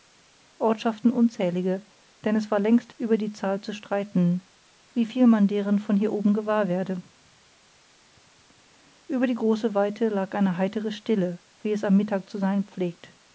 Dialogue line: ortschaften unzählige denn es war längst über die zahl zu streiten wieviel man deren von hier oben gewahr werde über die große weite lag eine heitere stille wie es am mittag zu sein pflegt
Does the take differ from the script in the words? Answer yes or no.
no